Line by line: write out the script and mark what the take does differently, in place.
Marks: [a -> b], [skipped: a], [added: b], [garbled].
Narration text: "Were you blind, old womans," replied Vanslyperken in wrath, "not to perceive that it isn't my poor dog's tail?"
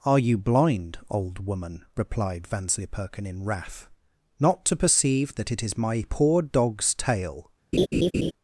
["Were -> Are] you blind, old [womans," -> woman] replied Vanslyperken in wrath, "not to perceive that it [isn't -> is] my poor dog's tail?"